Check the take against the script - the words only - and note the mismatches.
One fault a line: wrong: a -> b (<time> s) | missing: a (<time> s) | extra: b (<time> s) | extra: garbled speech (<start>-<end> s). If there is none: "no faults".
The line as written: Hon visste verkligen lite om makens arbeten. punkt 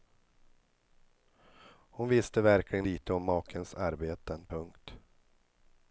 no faults